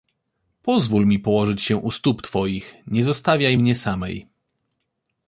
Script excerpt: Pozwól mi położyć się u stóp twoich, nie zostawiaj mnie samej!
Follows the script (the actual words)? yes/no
yes